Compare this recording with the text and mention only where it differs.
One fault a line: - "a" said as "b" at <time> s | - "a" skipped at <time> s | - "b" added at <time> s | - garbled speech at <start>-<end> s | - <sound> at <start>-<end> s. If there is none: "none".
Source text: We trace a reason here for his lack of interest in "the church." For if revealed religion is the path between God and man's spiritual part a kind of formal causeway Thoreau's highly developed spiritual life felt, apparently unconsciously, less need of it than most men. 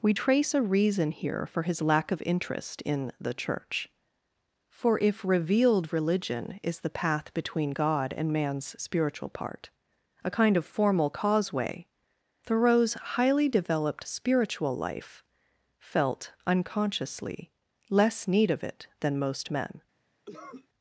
- "apparently" skipped at 16.3 s
- cough at 20.3-20.7 s